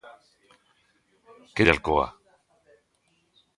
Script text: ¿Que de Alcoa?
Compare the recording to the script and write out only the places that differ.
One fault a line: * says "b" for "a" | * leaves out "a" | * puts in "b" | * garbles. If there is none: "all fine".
all fine